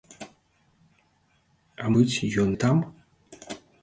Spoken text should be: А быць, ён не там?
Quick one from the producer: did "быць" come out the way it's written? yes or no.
yes